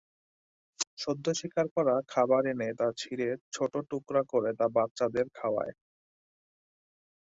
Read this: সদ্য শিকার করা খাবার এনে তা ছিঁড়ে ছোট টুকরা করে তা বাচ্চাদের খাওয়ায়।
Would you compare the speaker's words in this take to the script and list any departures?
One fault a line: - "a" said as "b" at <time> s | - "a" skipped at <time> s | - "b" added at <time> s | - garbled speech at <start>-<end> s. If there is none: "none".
none